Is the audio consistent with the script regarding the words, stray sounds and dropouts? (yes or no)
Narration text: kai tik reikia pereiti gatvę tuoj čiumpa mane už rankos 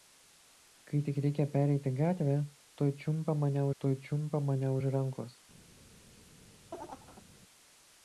no